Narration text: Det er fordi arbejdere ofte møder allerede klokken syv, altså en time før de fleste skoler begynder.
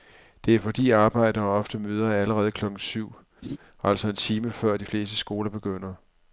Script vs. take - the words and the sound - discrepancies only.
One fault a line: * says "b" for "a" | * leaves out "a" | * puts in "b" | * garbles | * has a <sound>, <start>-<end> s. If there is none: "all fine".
* has a laugh, 3.4-3.6 s